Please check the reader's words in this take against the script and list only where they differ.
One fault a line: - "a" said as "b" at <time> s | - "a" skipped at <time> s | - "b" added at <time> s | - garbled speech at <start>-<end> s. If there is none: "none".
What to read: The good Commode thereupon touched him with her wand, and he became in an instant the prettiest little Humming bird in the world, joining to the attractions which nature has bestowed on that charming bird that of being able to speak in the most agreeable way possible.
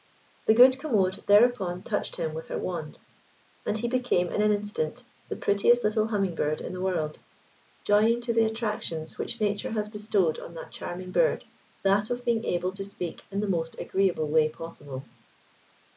none